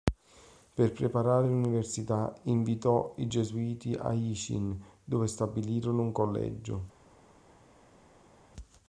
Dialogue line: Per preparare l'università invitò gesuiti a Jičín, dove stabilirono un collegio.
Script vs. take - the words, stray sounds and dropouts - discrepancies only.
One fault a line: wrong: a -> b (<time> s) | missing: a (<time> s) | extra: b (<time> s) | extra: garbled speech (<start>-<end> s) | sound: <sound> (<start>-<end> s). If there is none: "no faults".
extra: i (3.2 s)